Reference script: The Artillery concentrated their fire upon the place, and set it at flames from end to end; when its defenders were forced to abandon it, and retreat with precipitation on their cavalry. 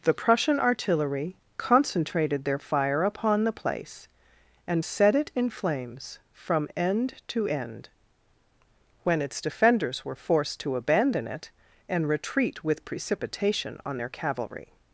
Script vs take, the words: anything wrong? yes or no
yes